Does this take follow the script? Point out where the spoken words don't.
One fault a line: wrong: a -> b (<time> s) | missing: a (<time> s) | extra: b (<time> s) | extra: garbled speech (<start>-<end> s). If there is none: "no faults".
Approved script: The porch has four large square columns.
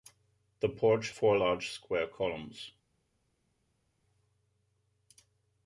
missing: has (1.1 s)